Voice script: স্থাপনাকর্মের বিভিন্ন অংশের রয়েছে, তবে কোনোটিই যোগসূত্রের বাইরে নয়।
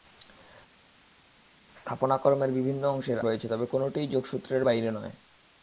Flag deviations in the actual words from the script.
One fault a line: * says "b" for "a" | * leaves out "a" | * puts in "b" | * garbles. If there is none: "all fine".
all fine